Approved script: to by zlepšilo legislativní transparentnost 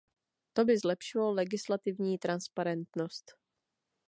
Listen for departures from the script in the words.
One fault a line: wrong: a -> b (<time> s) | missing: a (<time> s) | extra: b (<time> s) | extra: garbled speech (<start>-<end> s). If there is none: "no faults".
no faults